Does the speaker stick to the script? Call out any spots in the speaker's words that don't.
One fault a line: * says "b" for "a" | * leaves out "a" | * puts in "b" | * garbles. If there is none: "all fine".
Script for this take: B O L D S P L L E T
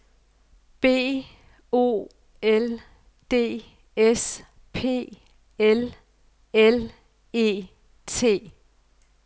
all fine